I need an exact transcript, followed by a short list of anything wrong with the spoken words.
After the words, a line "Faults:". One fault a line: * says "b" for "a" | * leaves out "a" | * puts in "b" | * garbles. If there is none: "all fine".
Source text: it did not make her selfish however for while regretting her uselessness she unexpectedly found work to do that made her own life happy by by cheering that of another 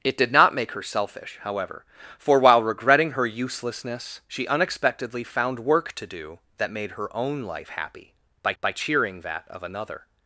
it did not make her selfish however for while regretting her uselessness she unexpectedly found work to do that made her own life happy by by cheering that of another
Faults:
all fine